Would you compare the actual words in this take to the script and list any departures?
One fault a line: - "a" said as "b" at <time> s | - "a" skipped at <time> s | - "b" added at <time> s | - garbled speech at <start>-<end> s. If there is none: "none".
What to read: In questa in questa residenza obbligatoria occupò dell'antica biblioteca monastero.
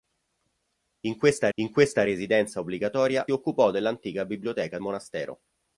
none